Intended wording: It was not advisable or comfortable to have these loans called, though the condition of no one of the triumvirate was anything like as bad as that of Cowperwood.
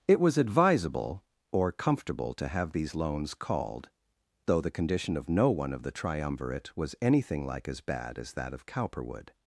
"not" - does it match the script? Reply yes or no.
no